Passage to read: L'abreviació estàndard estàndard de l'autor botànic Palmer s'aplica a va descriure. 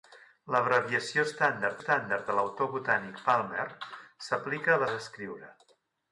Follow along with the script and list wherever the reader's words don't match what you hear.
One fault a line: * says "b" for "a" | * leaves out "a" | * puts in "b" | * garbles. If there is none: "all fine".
all fine